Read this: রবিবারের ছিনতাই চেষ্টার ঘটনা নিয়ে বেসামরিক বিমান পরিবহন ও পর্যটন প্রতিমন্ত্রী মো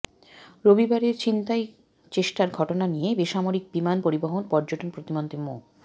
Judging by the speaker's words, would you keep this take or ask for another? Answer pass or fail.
fail